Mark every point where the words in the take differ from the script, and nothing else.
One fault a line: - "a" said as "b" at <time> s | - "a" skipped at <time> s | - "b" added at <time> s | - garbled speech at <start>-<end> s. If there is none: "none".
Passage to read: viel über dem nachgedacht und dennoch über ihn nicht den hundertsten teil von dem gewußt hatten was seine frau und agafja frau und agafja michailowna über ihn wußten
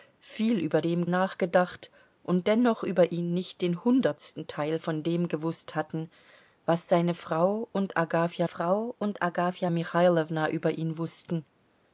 none